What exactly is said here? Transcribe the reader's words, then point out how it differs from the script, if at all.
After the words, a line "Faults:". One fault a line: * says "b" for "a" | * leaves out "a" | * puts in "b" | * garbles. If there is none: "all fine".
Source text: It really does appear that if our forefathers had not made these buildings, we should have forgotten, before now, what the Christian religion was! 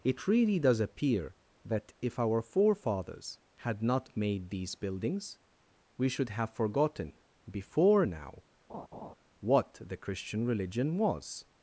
It really does appear that if our forefathers had not made these buildings, we should have forgotten, before now, what the Christian religion was!
Faults:
all fine